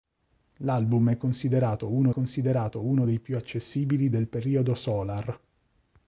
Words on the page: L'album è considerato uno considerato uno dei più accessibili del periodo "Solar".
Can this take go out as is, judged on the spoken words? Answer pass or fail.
pass